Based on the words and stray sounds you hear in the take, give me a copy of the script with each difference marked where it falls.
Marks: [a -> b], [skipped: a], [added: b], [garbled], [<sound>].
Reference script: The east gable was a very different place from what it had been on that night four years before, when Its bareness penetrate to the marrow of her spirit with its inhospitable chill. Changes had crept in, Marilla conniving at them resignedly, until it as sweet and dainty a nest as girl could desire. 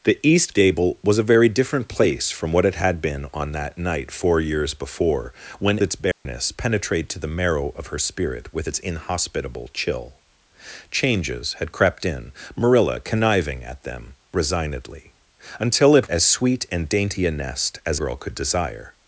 The east gable was a very different place from what it had been on that night four years before, when Its bareness [dropout] penetrate to the marrow of her spirit with its inhospitable chill. Changes had crept in, Marilla conniving at them resignedly, until it as sweet and dainty a nest as girl could desire.